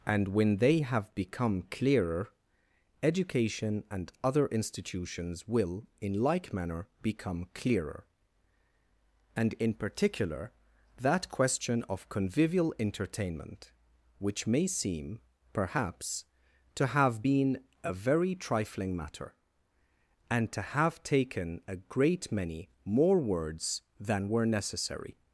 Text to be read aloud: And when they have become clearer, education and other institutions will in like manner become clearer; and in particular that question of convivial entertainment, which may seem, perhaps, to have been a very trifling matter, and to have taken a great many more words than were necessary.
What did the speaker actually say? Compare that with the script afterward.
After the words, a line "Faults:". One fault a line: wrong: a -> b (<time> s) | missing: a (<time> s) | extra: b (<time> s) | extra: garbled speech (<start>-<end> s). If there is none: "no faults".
And when they have become clearer, education and other institutions will in like manner become clearer; and in particular that question of convivial entertainment, which may seem, perhaps, to have been a very trifling matter, and to have taken a great many more words than were necessary.
Faults:
no faults